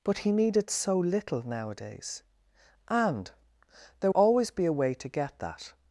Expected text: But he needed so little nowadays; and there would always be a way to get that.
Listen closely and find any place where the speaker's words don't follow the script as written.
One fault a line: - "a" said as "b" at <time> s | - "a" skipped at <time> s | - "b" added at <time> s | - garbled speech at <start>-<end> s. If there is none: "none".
- "would" skipped at 4.1 s